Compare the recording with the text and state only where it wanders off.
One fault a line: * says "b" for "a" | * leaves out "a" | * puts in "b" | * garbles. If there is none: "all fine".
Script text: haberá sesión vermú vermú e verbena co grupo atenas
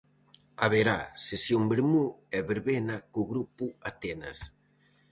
* leaves out "vermú"